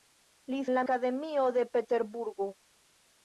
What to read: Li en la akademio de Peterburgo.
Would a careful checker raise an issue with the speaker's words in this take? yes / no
no